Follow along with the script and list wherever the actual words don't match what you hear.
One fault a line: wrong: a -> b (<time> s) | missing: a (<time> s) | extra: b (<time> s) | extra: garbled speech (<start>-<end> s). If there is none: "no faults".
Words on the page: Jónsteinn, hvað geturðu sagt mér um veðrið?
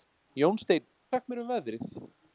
missing: hvað geturðu (0.9 s)